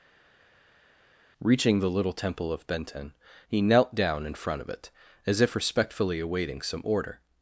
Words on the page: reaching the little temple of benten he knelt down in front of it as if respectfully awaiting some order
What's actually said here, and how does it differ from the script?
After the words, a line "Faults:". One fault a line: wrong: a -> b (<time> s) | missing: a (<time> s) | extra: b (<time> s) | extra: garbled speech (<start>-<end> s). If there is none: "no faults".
reaching the little temple of benten he knelt down in front of it as if respectfully awaiting some order
Faults:
no faults